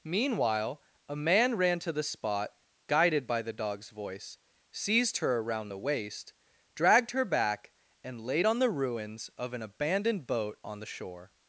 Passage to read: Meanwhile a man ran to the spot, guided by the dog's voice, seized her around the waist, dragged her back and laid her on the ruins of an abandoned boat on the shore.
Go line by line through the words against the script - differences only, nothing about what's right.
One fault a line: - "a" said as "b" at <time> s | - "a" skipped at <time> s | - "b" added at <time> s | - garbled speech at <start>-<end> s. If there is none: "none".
- "her" skipped at 8.5 s